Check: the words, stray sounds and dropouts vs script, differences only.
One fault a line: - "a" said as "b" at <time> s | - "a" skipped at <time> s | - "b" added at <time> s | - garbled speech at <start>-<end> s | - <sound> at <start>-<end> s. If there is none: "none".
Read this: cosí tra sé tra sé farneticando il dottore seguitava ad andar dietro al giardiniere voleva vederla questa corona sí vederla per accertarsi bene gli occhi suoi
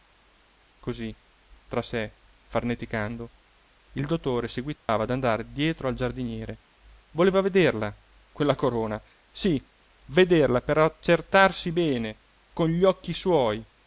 - "tra sé" skipped at 2.1 s
- dropout at 4.8-4.9 s
- "questa" said as "quella" at 8.3 s
- "con" added at 12.5 s